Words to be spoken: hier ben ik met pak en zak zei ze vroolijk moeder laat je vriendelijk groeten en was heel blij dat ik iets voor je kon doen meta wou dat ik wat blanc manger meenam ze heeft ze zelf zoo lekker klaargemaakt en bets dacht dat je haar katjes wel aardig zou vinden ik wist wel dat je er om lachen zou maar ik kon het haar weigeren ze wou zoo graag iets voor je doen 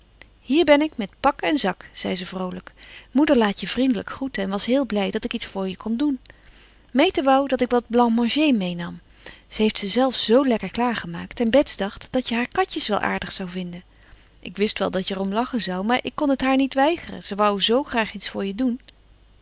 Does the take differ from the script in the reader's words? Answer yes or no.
yes